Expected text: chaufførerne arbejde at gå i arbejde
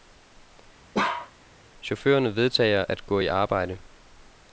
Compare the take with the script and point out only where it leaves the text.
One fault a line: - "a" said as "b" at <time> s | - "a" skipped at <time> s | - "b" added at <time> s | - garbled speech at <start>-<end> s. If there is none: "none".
- "arbejde" said as "vedtager" at 2.4 s